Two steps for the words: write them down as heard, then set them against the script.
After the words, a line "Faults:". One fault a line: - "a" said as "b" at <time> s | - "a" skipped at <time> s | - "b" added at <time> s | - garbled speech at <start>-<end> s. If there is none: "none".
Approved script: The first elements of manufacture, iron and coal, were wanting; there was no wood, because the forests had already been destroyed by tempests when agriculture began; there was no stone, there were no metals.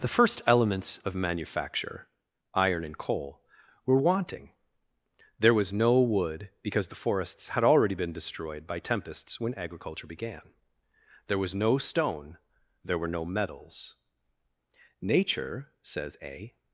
The first elements of manufacture, iron and coal, were wanting; there was no wood, because the forests had already been destroyed by tempests when agriculture began; there was no stone, there were no metals. Nature, says a
Faults:
- "Nature says a" added at 15.0 s